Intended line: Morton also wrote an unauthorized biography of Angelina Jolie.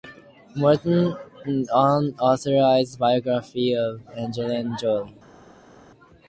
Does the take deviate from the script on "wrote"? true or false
true